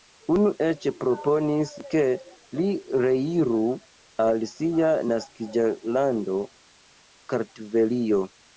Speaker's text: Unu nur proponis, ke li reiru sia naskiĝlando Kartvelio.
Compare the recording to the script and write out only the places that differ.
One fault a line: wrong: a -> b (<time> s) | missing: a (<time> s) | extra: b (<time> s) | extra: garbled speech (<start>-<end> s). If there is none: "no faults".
wrong: nur -> eĉ (0.7 s)
extra: al (4.3 s)